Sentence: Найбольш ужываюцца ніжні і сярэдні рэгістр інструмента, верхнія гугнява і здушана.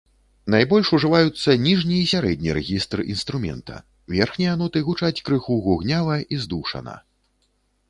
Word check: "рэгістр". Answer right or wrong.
right